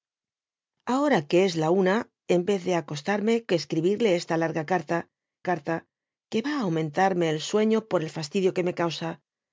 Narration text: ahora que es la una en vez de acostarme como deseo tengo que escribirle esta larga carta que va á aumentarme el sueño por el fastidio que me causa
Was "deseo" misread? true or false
true